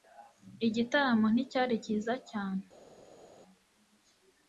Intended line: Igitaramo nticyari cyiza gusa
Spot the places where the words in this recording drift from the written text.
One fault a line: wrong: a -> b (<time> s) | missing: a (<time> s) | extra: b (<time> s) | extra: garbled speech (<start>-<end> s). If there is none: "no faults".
wrong: gusa -> cyane (2.3 s)